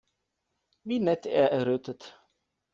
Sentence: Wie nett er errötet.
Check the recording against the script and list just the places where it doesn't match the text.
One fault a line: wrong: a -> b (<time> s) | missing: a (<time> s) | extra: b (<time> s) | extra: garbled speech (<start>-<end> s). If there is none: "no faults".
no faults